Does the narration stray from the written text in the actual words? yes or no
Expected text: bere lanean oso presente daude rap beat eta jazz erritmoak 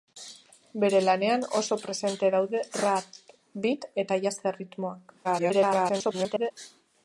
yes